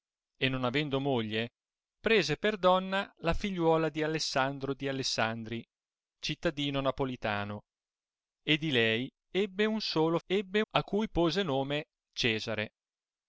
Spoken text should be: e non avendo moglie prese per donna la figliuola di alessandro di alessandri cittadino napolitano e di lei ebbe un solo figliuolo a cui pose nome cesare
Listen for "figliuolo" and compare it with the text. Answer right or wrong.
wrong